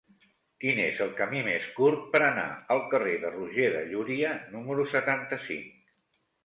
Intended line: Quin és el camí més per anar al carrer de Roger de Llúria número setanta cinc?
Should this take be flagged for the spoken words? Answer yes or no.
yes